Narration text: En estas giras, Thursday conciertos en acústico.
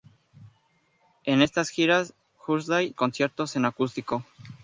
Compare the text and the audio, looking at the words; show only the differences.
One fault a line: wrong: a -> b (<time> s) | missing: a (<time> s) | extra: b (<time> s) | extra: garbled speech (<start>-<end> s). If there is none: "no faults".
no faults